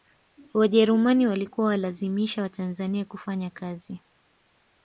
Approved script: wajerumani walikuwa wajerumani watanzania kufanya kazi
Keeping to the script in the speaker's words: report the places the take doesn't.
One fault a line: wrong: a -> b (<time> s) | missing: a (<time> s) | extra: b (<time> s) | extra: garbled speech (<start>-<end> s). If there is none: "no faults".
wrong: wajerumani -> walazimisha (1.7 s)